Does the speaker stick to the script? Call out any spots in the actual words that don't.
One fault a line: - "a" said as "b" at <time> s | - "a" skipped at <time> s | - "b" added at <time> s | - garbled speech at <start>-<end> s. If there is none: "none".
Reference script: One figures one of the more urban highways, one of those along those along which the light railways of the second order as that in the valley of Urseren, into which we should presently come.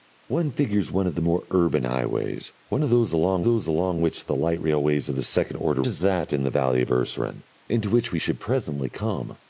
none